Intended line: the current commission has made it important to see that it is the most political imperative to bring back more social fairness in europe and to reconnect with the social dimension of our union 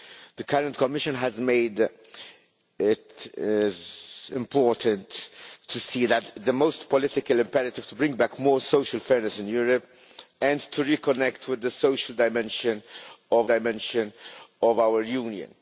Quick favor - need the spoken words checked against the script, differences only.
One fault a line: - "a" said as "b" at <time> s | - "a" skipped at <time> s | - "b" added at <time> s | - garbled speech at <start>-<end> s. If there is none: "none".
- "dimension of" added at 13.5 s